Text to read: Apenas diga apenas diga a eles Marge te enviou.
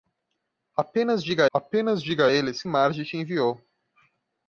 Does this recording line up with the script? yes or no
yes